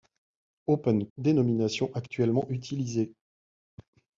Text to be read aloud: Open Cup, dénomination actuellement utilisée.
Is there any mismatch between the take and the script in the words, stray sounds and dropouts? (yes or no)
yes